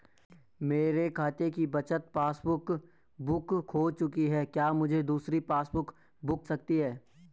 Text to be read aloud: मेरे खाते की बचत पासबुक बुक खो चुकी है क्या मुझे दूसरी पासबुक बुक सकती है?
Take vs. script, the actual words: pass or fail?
pass